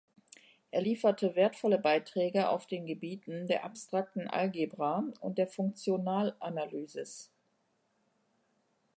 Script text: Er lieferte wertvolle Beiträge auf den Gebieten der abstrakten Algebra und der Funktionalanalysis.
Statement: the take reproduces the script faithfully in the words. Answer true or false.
true